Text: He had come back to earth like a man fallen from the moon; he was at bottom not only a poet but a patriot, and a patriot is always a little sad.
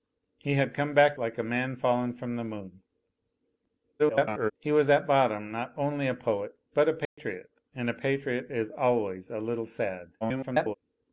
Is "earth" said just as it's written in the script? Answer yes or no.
no